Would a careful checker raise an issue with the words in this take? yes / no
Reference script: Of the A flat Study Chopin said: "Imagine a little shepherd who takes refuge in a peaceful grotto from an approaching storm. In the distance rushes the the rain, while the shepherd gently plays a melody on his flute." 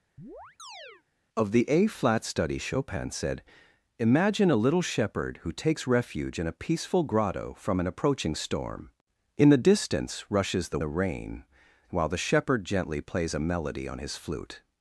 no